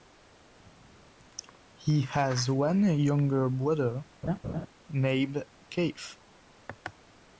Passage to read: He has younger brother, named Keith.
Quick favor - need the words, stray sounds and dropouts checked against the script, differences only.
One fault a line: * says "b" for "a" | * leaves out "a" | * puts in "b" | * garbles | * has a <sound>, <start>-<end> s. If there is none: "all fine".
* puts in "one"
* has a laugh, 4.2-4.7 s